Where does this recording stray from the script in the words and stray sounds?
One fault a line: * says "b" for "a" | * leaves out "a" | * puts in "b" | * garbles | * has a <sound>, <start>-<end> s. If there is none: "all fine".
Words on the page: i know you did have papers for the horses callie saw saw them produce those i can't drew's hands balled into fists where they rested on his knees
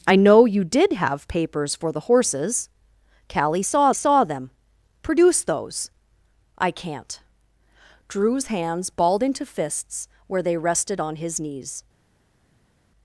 all fine